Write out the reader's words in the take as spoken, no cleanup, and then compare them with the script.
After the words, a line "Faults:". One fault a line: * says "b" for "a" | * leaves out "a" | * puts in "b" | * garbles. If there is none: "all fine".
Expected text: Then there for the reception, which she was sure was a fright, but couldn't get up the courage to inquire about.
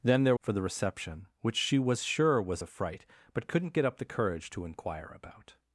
Then there for the reception, which she was sure was a fright, but couldn't get up the courage to inquire about.
Faults:
all fine